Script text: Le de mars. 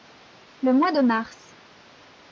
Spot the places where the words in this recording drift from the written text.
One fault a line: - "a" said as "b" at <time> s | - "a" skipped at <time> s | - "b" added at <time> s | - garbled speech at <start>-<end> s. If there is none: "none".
- "mois" added at 0.7 s